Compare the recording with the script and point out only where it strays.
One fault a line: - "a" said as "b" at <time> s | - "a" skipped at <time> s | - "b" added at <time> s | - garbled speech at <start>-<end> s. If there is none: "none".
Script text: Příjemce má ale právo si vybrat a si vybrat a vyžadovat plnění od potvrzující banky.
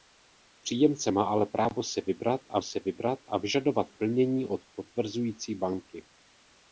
none